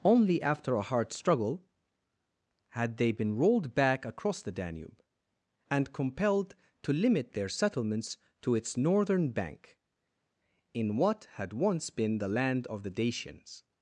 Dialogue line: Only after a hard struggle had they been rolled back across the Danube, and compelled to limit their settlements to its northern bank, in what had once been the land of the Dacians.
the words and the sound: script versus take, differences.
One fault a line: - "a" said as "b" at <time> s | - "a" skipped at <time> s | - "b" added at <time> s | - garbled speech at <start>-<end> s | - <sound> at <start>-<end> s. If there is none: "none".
none